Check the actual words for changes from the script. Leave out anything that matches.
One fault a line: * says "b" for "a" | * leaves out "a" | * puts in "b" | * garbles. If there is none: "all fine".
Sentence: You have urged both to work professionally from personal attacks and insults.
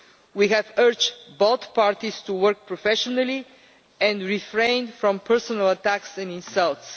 * says "We" for "You"
* puts in "parties"
* puts in "and refrain"